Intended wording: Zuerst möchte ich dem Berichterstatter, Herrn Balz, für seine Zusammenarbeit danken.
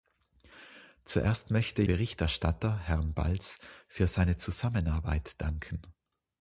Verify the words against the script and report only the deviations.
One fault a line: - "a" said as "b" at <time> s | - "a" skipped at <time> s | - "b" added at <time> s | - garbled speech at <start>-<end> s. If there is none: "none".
- "ich dem" skipped at 1.8 s